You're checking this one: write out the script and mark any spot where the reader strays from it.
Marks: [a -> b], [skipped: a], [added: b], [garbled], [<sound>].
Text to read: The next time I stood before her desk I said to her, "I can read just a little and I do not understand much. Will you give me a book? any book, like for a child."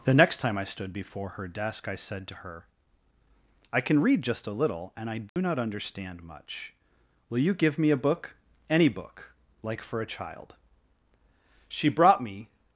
The next time I stood before her desk I said to her, "I can read just a little and I do [dropout] not understand much. Will you give me a book? any book, like for a child." [added: She brought me]